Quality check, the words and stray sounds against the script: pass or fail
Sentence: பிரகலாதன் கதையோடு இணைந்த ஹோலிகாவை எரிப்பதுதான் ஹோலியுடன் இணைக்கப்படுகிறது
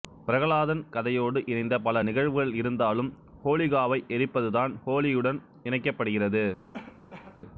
fail